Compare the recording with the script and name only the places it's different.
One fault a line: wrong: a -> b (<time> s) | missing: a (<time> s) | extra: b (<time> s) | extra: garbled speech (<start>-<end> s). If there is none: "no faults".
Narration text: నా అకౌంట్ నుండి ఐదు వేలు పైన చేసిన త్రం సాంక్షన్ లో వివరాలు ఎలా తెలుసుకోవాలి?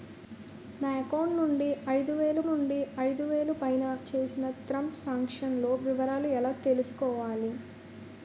extra: నుండి ఐదు వేలు (2.5 s)